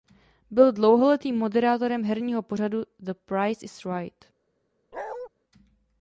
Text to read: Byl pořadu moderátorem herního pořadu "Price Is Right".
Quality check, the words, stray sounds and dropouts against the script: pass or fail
fail